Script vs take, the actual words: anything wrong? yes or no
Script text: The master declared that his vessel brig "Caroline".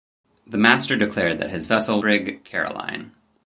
no